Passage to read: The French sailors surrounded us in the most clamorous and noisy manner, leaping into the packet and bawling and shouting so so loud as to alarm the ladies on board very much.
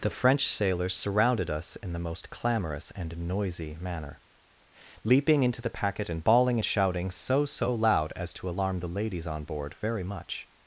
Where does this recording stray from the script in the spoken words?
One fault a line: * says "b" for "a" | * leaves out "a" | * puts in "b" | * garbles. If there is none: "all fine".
all fine